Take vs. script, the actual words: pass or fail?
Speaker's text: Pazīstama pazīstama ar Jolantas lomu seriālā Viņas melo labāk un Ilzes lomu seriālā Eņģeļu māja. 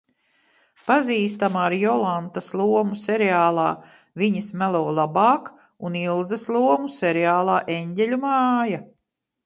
fail